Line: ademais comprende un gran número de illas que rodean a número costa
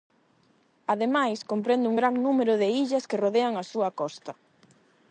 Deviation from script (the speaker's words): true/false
true